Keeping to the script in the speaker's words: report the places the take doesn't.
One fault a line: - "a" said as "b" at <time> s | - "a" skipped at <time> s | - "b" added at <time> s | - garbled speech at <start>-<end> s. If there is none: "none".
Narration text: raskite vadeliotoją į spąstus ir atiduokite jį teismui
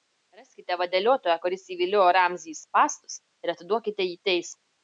- "kuris įviliojo ramzį" added at 1.4 s